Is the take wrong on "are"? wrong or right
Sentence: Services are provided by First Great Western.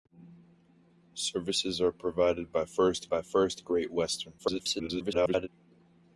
right